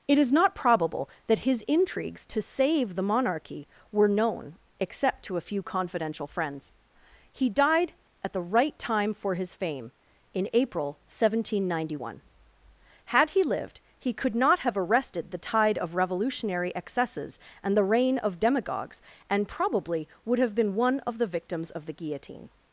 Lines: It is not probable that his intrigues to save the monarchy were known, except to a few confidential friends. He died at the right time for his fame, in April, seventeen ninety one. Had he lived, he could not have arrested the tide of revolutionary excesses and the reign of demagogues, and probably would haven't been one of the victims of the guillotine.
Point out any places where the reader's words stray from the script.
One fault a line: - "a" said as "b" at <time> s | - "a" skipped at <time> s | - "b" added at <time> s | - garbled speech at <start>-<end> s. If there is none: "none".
- "haven't" said as "have" at 20.4 s